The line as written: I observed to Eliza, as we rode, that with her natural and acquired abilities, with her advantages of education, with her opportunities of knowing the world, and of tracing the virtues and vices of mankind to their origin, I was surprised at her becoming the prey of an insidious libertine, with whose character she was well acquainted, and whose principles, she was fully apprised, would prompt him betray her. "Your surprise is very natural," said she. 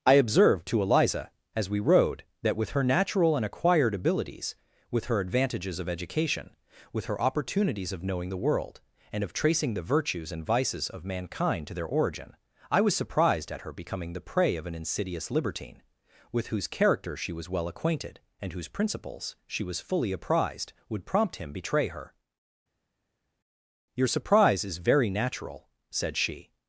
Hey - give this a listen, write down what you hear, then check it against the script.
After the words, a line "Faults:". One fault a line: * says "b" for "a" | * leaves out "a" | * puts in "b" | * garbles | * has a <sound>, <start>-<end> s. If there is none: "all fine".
I observed to Eliza, as we rode, that with her natural and acquired abilities, with her advantages of education, with her opportunities of knowing the world, and of tracing the virtues and vices of mankind to their origin, I was surprised at her becoming the prey of an insidious libertine, with whose character she was well acquainted, and whose principles, she was fully apprised, would prompt him betray her. "Your surprise is very natural," said she.
Faults:
all fine